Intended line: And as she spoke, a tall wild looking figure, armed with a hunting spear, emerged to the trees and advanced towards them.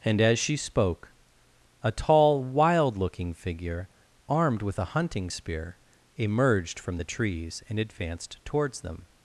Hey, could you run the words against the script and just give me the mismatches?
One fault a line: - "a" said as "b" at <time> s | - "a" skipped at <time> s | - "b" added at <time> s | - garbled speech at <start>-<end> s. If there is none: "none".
- "to" said as "from" at 6.8 s